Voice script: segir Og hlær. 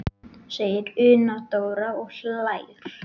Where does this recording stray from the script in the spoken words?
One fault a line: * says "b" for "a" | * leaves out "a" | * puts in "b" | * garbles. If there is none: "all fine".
* puts in "Una Dóra"